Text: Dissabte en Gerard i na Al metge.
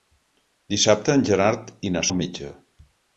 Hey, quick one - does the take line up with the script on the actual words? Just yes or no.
yes